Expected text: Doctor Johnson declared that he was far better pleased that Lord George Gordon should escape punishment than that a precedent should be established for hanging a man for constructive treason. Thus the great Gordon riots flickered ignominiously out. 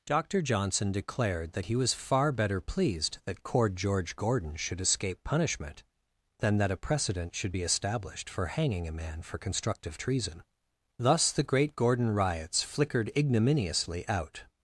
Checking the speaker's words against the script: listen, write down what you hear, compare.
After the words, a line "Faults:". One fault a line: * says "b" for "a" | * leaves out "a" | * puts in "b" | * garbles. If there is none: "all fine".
Doctor Johnson declared that he was far better pleased that Cord George Gordon should escape punishment than that a precedent should be established for hanging a man for constructive treason. Thus the great Gordon riots flickered ignominiously out.
Faults:
* says "Cord" for "Lord"